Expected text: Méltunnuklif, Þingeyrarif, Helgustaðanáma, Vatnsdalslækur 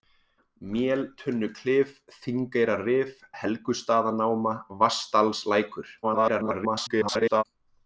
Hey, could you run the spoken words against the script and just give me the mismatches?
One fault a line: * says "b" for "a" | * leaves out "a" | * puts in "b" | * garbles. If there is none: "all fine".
* garbles